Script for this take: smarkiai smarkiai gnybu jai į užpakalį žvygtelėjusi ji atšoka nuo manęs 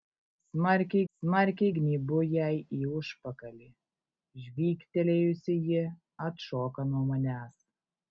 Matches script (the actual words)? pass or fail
pass